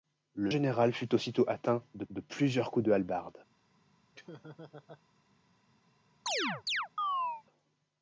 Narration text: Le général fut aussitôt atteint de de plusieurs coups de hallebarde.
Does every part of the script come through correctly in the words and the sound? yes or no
no